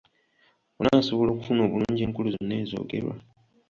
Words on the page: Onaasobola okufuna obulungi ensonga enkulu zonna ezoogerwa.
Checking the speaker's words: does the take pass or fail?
fail